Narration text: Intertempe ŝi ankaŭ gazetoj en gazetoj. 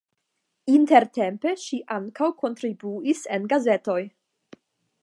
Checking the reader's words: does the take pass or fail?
fail